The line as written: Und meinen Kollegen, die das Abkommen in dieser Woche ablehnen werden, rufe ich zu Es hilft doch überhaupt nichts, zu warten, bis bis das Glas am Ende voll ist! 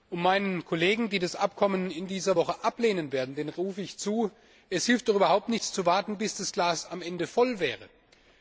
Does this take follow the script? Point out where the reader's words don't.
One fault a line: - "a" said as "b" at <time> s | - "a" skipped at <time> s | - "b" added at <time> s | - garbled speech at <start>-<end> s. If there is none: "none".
- "bis" skipped at 6.4 s